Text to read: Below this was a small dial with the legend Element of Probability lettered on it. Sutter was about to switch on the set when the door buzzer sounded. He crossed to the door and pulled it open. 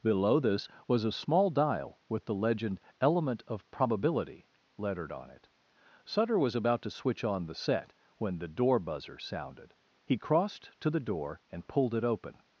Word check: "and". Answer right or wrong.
right